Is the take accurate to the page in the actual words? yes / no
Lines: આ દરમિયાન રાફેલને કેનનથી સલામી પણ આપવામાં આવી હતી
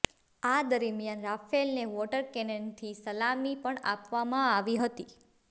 no